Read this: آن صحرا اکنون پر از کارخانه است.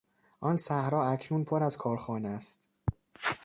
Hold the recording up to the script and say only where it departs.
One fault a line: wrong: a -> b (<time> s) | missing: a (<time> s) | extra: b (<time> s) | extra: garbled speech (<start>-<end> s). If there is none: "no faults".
no faults